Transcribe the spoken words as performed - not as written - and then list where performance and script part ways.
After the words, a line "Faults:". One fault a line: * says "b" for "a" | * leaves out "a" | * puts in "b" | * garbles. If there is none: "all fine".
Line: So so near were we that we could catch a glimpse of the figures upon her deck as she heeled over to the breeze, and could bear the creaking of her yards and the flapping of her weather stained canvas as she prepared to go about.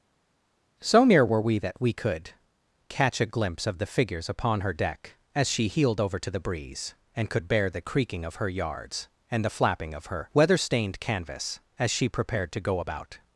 So near were we that we could catch a glimpse of the figures upon her deck as she heeled over to the breeze, and could bear the creaking of her yards and the flapping of her weather stained canvas as she prepared to go about.
Faults:
* leaves out "so"